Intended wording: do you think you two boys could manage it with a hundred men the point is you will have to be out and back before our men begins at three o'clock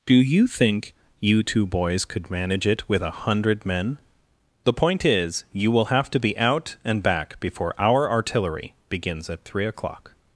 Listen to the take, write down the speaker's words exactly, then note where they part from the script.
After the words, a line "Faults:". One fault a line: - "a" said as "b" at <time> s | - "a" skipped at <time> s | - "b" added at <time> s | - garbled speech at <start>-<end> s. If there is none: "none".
do you think you two boys could manage it with a hundred men the point is you will have to be out and back before our artillery begins at three o'clock
Faults:
- "men" said as "artillery" at 8.1 s